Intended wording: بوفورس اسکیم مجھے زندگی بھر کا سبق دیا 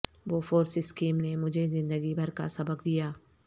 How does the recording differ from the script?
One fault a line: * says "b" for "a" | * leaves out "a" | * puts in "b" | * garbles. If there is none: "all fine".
* puts in "نے"